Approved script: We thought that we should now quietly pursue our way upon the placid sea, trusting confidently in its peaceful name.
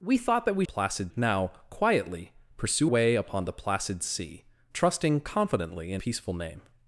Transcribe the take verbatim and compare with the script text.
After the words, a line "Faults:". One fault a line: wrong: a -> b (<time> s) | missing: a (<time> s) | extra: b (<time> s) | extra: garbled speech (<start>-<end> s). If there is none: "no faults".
We thought that we placid now quietly pursue way upon the placid sea, trusting confidently in peaceful name.
Faults:
wrong: should -> placid (0.6 s)
missing: our (2.9 s)
missing: its (6.0 s)